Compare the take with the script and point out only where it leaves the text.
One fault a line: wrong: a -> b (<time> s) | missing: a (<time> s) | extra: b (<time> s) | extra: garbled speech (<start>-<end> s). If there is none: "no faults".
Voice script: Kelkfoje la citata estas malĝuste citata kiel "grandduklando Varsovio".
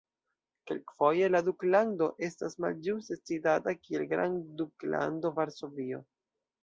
wrong: citata -> duklando (1.5 s)